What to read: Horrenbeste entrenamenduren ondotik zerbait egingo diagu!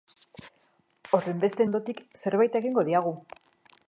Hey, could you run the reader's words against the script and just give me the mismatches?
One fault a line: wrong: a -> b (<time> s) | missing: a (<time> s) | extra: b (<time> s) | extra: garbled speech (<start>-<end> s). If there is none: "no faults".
missing: entrenamenduren (1.6 s)